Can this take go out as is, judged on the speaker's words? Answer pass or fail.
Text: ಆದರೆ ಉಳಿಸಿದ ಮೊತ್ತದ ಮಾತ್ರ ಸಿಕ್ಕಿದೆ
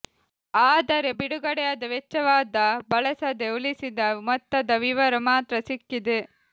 fail